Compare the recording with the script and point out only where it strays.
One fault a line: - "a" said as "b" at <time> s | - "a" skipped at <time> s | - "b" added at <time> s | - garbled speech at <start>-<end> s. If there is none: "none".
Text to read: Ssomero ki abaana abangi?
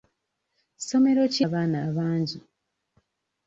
none